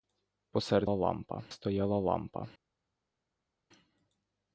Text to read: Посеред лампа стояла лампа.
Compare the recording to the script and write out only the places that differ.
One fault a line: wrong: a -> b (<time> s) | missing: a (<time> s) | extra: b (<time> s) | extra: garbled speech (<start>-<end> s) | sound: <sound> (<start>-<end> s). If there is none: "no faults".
no faults